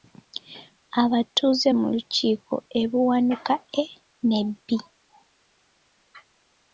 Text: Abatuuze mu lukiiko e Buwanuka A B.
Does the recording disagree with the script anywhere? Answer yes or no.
yes